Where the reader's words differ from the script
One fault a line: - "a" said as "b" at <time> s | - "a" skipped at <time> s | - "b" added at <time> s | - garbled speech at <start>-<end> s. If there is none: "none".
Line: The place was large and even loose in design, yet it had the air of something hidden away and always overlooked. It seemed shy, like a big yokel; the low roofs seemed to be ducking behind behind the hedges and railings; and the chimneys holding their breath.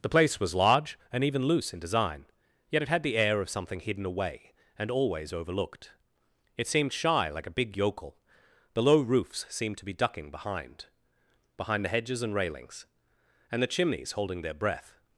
none